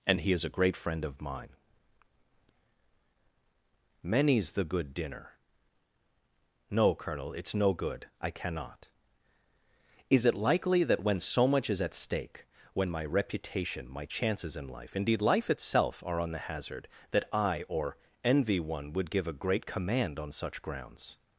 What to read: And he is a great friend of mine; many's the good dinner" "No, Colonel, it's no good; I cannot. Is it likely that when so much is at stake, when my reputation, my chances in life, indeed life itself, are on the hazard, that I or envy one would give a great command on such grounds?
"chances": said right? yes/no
yes